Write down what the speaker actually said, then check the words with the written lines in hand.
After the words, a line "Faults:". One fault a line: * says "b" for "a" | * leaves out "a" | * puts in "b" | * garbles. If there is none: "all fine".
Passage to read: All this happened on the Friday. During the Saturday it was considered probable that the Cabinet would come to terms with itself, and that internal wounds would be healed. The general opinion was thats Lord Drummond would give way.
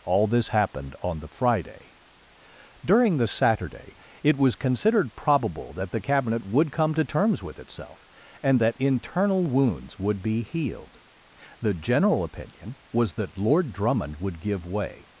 All this happened on the Friday. During the Saturday it was considered probable that the Cabinet would come to terms with itself, and that internal wounds would be healed. The general opinion was that Lord Drummond would give way.
Faults:
* says "that" for "thats"